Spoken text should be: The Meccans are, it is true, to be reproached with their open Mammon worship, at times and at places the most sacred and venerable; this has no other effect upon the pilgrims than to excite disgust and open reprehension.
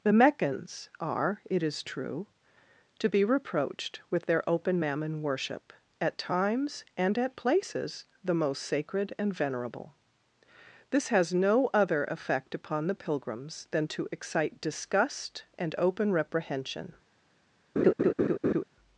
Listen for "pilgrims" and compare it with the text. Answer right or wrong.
right